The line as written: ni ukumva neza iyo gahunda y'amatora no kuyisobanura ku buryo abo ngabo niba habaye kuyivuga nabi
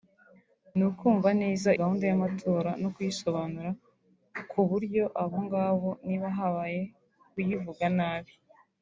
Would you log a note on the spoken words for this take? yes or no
yes